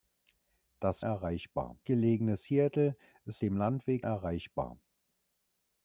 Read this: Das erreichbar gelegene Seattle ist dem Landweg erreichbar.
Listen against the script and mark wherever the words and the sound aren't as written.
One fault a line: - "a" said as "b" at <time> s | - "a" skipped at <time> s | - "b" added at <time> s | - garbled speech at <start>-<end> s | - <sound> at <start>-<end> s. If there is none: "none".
none